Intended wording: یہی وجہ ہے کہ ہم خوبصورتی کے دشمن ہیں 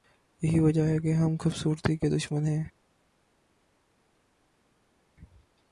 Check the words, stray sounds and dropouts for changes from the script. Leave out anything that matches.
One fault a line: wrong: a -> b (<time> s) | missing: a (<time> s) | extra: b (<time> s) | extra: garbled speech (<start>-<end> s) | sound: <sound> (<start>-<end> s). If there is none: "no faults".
no faults